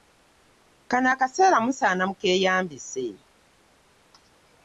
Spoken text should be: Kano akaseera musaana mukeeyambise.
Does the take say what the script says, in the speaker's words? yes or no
yes